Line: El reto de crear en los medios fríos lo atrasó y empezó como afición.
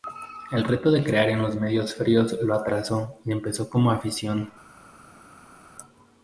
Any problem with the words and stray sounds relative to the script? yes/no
no